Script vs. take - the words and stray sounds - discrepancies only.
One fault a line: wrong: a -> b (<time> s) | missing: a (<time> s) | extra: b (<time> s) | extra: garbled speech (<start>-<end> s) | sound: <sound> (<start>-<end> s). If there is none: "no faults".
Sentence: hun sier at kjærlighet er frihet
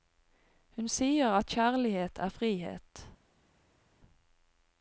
no faults